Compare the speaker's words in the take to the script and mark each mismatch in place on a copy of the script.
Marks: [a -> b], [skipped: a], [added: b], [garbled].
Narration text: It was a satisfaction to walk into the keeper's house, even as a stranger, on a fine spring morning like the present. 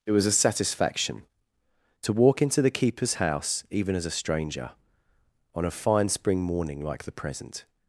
It was a satisfaction to walk into the keeper's house, even as a stranger, on a fine spring morning like the present.